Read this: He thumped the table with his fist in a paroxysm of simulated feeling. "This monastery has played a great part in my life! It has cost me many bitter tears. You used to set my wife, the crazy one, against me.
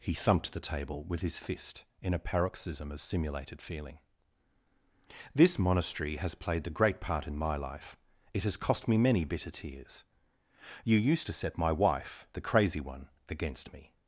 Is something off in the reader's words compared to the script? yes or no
yes